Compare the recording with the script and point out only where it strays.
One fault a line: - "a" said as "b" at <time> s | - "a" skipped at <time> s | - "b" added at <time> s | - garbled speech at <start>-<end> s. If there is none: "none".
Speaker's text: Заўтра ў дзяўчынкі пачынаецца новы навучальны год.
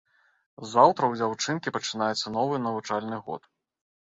none